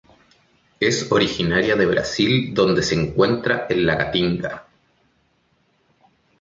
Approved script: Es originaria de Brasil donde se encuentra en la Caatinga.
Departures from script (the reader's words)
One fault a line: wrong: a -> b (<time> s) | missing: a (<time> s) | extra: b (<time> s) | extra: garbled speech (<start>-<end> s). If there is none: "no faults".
no faults